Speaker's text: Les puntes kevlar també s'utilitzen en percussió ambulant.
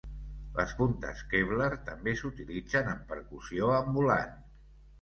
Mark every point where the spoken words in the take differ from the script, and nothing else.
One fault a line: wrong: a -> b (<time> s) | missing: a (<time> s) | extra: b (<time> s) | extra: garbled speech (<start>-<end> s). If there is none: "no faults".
no faults